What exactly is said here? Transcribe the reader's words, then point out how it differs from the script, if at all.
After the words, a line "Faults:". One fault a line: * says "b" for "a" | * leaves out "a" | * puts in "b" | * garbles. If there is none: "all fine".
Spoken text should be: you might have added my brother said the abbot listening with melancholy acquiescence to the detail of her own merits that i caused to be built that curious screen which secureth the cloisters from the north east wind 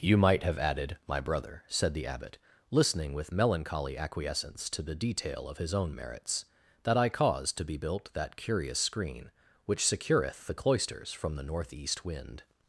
you might have added my brother said the abbot listening with melancholy acquiescence to the detail of his own merits that i caused to be built that curious screen which secureth the cloisters from the north east wind
Faults:
* says "his" for "her"